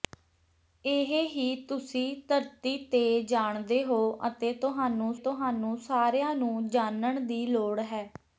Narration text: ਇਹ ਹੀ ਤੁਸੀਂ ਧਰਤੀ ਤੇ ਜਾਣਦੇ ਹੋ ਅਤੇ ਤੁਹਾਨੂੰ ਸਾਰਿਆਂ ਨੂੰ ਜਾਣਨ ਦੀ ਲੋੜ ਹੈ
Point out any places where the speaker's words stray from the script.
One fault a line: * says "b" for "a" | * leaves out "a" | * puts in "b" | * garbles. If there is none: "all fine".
* puts in "ਤੁਹਾਨੂੰ"